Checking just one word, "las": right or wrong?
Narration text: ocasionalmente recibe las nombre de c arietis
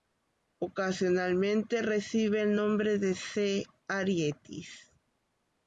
wrong